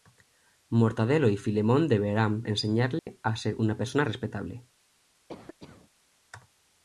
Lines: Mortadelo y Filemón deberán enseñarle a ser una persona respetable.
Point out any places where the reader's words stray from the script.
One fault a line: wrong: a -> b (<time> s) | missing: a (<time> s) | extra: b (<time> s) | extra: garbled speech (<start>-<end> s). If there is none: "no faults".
no faults